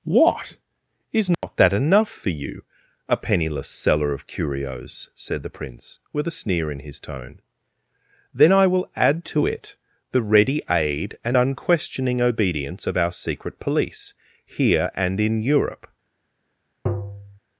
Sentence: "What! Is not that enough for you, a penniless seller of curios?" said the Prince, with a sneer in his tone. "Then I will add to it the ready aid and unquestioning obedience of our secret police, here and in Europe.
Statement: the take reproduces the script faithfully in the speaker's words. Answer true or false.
true